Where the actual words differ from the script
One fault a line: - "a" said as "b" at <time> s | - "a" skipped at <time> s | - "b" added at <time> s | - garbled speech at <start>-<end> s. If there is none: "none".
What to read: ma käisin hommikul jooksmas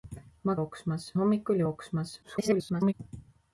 - "käisin" said as "jooksmas" at 0.6 s
- garbled speech at 2.2-2.9 s